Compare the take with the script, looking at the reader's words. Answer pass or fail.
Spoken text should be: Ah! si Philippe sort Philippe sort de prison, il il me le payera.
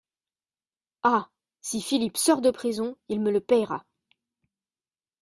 fail